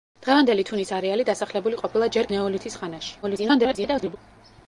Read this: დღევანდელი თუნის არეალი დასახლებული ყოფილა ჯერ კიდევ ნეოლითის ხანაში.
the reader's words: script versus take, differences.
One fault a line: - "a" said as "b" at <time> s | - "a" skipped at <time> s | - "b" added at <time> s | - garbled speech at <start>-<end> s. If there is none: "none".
- "კიდევ" skipped at 2.3 s
- garbled speech at 3.2-4.2 s